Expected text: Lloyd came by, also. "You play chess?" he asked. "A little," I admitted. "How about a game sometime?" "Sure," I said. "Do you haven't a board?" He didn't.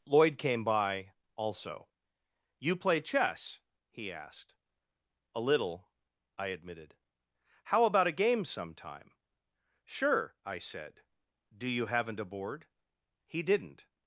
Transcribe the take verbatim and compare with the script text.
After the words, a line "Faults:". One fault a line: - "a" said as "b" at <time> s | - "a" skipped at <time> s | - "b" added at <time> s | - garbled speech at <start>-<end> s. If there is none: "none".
Lloyd came by, also. "You play chess?" he asked. "A little," I admitted. "How about a game sometime?" "Sure," I said. "Do you haven't a board?" He didn't.
Faults:
none